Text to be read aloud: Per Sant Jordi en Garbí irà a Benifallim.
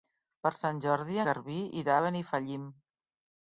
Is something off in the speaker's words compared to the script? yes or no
yes